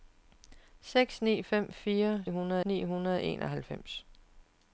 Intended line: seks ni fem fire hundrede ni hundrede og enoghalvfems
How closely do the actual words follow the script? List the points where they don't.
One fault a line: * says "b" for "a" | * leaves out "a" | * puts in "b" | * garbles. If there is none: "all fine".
all fine